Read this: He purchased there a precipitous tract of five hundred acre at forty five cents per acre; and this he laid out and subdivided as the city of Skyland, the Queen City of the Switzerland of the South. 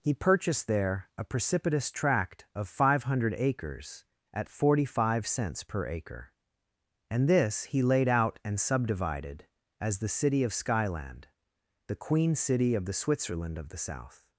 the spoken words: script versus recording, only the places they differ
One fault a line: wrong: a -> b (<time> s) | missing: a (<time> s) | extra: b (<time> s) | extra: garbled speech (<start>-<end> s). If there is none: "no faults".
wrong: acre -> acres (3.4 s)